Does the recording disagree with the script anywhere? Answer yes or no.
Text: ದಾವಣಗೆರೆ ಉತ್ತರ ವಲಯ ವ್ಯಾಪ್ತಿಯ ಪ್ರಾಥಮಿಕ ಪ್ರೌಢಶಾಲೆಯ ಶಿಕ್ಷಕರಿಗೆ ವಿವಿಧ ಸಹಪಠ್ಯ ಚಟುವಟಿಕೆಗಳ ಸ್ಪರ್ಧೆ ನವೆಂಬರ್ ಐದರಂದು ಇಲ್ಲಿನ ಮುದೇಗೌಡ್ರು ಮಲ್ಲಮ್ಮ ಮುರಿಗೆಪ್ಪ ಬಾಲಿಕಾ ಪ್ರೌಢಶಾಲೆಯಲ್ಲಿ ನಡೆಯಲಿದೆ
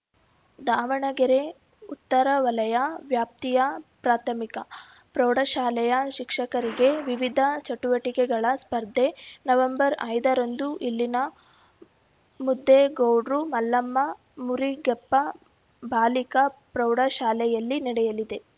yes